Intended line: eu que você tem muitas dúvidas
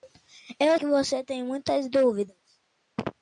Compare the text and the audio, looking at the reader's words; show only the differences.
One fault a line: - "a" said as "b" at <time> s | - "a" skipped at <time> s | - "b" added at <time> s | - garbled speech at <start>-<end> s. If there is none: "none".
none